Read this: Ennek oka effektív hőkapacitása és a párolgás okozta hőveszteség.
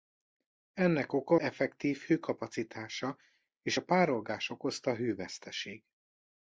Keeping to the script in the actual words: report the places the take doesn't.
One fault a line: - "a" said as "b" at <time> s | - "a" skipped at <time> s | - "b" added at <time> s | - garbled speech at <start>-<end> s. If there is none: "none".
none